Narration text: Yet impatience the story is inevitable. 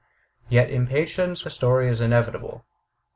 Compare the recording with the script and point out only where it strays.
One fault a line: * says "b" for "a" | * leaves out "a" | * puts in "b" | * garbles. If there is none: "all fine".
all fine